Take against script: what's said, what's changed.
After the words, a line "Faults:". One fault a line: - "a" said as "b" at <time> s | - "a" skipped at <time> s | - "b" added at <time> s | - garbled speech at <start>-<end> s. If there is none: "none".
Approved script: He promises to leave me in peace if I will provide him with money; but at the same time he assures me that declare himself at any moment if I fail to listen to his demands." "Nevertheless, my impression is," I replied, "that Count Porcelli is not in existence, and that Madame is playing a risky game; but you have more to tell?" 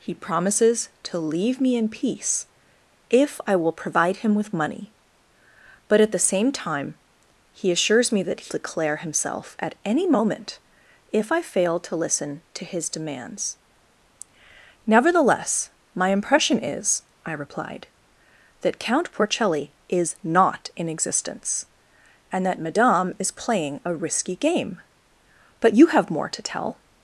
He promises to leave me in peace if I will provide him with money; but at the same time he assures me that declare himself at any moment if I fail to listen to his demands." "Nevertheless, my impression is," I replied, "that Count Porcelli is not in existence, and that Madame is playing a risky game; but you have more to tell?"
Faults:
none